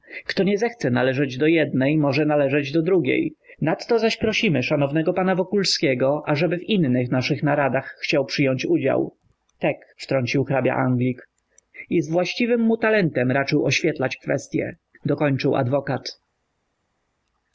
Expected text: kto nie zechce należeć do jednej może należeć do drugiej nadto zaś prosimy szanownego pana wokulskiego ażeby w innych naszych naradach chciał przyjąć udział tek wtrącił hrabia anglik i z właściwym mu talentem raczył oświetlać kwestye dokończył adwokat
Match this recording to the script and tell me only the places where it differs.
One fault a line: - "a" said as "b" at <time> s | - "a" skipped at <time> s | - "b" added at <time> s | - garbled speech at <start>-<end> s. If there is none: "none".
none